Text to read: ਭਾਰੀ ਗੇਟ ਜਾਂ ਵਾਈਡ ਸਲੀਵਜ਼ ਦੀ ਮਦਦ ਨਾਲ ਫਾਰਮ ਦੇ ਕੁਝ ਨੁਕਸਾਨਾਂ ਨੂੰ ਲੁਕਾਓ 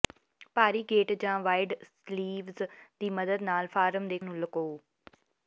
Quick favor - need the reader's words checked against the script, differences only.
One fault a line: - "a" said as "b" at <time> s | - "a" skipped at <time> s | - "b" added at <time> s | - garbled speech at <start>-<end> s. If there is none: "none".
- "ਕੁਝ ਨੁਕਸਾਨਾਂ" skipped at 4.2 s